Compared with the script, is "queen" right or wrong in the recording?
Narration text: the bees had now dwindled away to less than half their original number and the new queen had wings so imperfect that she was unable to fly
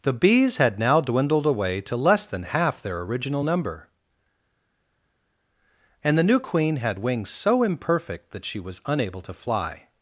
right